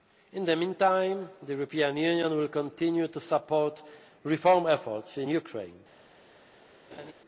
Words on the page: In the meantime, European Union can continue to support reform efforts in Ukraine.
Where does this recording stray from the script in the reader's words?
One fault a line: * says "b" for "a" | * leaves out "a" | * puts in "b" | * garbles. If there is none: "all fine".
* puts in "the"
* says "will" for "can"